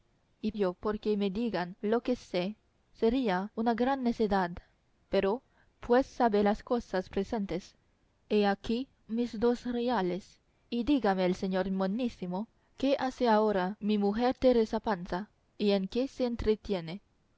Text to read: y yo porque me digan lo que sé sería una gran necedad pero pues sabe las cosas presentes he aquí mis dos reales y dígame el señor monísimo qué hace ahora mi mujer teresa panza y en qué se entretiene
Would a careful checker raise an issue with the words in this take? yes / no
no